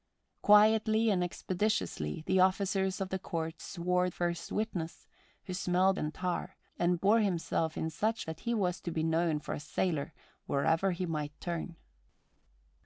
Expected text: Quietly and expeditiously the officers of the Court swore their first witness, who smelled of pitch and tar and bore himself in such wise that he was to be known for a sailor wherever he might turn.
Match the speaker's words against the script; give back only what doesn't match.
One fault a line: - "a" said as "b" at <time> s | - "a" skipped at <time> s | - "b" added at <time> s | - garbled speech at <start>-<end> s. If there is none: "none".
- "their" skipped at 4.1 s
- "of pitch" skipped at 6.0 s
- "wise" skipped at 8.3 s